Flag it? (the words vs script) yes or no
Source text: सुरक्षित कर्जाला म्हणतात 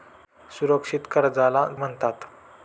no